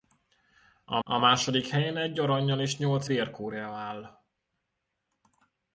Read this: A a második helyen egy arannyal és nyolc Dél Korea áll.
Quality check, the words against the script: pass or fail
pass